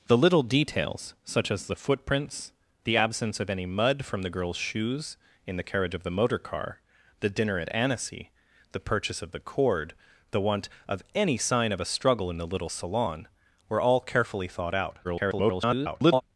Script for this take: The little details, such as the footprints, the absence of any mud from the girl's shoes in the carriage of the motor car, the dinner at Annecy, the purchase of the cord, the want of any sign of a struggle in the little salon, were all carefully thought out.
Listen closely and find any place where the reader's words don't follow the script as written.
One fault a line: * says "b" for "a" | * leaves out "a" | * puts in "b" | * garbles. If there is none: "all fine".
* garbles